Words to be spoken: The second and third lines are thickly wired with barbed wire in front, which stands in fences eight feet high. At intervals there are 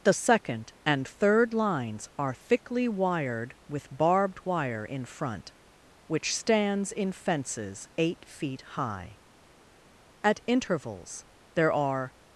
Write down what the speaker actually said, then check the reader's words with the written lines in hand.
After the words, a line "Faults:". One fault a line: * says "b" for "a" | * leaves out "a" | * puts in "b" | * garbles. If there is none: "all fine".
The second and third lines are thickly wired with barbed wire in front, which stands in fences eight feet high. At intervals there are
Faults:
all fine